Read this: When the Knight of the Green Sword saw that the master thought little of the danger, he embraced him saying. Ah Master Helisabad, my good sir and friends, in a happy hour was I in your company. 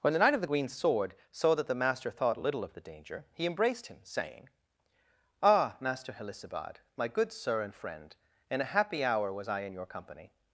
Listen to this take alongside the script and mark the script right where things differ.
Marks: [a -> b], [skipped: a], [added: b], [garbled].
When the Knight of the Green Sword saw that the master thought little of the danger, he embraced him saying. Ah Master Helisabad, my good sir and [friends, -> friend] in a happy hour was I in your company.